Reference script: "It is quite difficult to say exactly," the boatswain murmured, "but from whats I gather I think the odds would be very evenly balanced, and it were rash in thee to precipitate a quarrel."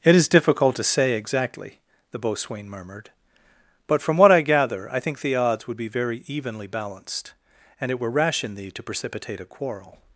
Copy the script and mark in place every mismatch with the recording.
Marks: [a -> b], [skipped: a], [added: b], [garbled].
"It is [skipped: quite] difficult to say exactly," the boatswain murmured, "but from [whats -> what] I gather I think the odds would be very evenly balanced, and it were rash in thee to precipitate a quarrel."